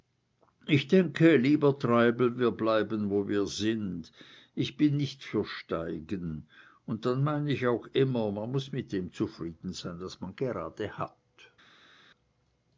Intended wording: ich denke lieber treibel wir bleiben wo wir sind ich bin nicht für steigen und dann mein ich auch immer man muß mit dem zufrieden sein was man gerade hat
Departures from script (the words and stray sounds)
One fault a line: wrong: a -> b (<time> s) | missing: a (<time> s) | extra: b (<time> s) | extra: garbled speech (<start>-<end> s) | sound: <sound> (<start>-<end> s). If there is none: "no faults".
no faults